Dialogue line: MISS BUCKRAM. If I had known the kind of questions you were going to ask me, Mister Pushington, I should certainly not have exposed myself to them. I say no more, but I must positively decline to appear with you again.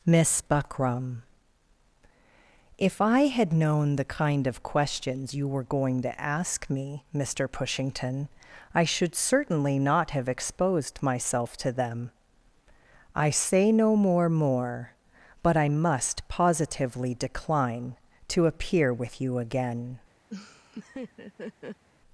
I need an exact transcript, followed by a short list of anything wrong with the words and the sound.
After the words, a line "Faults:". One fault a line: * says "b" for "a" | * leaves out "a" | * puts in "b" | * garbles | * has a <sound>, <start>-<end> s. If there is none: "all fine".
MISS BUCKRAM. If I had known the kind of questions you were going to ask me, Mister Pushington, I should certainly not have exposed myself to them. I say no more more, but I must positively decline to appear with you again.
Faults:
* puts in "more"
* has a laugh, 20.3-21.8 s